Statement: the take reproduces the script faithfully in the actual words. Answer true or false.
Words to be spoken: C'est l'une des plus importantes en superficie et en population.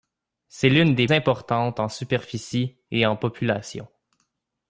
false